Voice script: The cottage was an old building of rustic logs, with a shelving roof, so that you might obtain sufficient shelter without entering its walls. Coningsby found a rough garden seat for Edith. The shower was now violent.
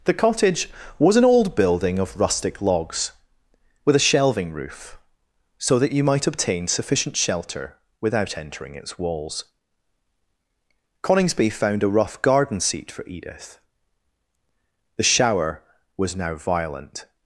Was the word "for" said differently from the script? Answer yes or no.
no